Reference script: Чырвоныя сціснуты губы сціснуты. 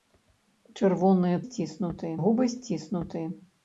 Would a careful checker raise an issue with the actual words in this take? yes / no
no